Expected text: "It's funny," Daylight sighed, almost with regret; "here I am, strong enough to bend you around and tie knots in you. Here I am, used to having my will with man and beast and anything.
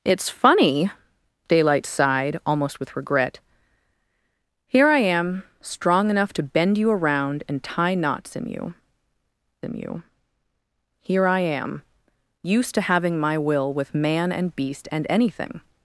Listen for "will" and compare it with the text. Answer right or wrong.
right